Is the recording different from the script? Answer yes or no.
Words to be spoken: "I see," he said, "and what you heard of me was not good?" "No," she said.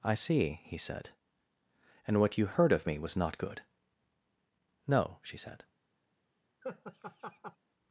no